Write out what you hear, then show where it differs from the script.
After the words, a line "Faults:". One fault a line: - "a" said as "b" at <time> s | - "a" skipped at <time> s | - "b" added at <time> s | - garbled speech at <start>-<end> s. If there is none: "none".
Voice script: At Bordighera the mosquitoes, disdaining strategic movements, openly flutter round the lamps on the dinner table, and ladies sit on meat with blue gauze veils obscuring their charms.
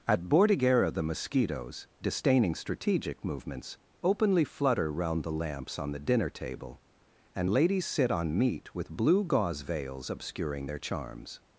At Bordighera the mosquitoes, disdaining strategic movements, openly flutter round the lamps on the dinner table, and ladies sit on meat with blue gauze veils obscuring their charms.
Faults:
none